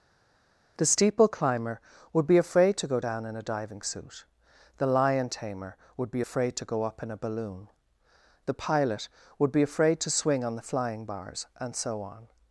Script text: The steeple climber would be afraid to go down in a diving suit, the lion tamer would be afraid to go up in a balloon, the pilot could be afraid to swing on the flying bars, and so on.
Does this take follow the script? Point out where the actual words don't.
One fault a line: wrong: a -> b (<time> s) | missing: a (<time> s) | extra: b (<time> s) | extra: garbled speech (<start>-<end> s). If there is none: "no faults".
wrong: could -> would (9.4 s)